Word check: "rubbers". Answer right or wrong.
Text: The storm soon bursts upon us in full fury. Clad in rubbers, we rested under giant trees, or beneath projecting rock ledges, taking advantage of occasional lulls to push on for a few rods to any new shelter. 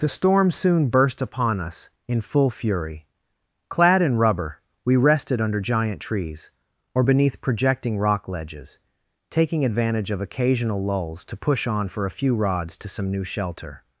wrong